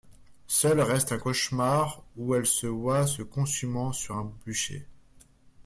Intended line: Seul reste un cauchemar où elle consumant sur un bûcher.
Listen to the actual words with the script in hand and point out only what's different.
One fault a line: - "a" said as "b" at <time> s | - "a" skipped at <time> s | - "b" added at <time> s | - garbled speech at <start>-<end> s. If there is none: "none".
- "se voit se" added at 2.5 s